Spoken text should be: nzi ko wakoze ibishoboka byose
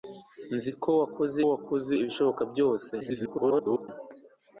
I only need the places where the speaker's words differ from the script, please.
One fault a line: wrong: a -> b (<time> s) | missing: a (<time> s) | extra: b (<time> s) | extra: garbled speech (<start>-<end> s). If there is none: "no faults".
extra: wakoze (1.5 s)
extra: garbled speech (3.0-3.9 s)